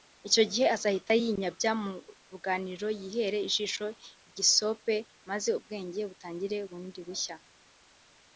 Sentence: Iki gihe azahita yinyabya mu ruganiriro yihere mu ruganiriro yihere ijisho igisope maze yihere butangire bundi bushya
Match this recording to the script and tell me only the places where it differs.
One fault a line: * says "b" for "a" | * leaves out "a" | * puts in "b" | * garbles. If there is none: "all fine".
* says "Icyo" for "Iki"
* leaves out "mu ruganiriro yihere"
* says "ubwenge" for "yihere"